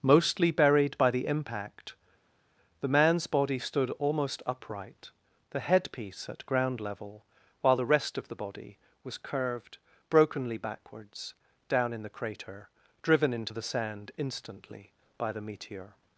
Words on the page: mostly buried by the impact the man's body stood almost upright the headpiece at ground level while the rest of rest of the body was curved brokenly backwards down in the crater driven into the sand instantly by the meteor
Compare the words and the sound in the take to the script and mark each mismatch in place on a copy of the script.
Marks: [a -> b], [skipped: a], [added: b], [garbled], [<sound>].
mostly buried by the impact the man's body stood almost upright the headpiece at ground level while the rest of [skipped: rest of] the body was curved brokenly backwards down in the crater driven into the sand instantly by the meteor